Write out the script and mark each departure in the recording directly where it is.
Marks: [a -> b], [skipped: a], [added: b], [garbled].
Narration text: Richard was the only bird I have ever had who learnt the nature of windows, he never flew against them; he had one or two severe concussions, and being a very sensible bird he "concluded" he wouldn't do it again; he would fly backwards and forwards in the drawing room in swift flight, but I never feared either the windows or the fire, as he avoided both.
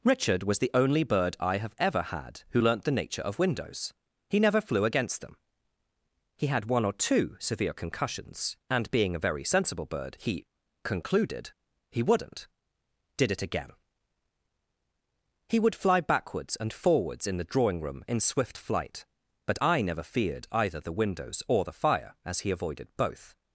Richard was the only bird I have ever had who learnt the nature of windows, he never flew against them; he had one or two severe concussions, and being a very sensible bird he "concluded" he wouldn't [do -> did] it again; he would fly backwards and forwards in the drawing room in swift flight, but I never feared either the windows or the fire, as he avoided both.